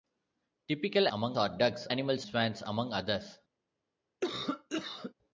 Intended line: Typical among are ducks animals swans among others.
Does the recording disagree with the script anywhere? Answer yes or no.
no